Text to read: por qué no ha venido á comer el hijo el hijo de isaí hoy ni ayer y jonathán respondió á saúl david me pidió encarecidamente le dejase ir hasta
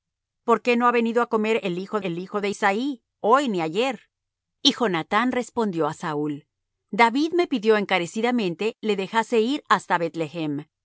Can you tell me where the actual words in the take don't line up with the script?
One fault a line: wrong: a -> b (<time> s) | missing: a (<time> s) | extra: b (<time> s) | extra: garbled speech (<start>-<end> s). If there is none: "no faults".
no faults